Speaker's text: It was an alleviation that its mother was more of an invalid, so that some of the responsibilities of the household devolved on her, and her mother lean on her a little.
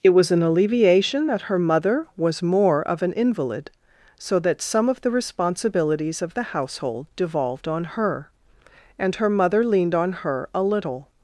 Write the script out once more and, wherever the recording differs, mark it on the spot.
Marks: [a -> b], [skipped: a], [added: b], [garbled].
It was an alleviation that [its -> her] mother was more of an invalid, so that some of the responsibilities of the household devolved on her, and her mother [lean -> leaned] on her a little.